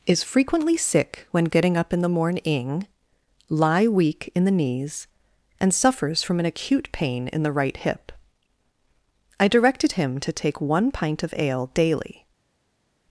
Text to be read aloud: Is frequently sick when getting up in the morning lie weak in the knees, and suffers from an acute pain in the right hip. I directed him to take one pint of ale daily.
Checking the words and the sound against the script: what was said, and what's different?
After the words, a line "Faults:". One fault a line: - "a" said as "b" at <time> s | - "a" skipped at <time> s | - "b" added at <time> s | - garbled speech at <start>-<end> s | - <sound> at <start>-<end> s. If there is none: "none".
Is frequently sick when getting up in the morning lie weak in the knees, and suffers from an acute pain in the right hip. I directed him to take one pint of ale daily.
Faults:
none